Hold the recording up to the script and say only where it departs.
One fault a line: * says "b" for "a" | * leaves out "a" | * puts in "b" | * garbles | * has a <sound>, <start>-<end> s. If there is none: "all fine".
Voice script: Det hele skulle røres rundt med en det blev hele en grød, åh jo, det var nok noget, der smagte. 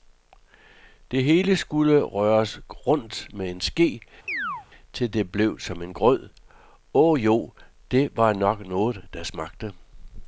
* puts in "ske til"
* has a chirp, 4.3-4.7 s
* says "som" for "hele"